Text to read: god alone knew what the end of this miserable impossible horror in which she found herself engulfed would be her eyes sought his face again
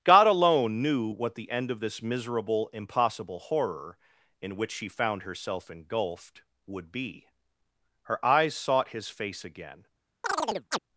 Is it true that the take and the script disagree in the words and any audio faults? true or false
true